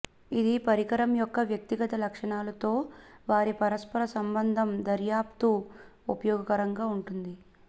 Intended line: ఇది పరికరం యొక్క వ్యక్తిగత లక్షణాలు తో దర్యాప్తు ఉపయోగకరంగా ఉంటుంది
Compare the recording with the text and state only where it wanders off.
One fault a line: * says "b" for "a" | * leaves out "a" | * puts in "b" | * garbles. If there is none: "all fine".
* puts in "వారి పరస్పర సంబంధం"